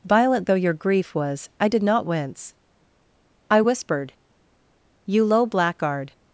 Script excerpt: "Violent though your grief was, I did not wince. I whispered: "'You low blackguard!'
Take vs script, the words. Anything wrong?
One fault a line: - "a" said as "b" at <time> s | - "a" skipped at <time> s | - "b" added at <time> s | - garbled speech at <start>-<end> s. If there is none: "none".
none